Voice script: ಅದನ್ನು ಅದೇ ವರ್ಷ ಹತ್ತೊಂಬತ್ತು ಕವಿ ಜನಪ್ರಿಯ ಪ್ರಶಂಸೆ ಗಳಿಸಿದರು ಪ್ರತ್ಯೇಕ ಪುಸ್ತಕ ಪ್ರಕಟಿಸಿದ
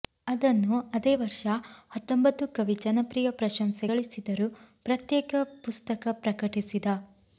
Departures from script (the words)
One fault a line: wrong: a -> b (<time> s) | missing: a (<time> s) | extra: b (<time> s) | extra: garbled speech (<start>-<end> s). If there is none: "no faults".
no faults